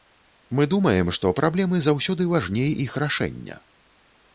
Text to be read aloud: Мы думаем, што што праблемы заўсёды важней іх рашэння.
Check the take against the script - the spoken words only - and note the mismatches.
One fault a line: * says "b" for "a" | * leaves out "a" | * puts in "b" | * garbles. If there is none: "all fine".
* leaves out "што"